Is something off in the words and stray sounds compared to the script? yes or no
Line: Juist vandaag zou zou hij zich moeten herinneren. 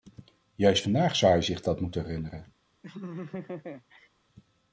yes